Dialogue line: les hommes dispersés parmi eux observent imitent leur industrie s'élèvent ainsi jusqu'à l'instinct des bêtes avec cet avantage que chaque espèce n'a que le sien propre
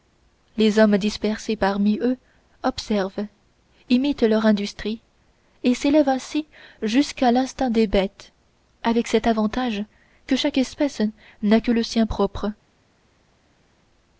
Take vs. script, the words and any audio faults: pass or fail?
fail